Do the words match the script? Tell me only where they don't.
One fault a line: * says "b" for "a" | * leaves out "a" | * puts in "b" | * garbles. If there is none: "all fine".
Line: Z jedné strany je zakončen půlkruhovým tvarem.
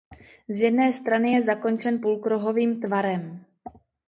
all fine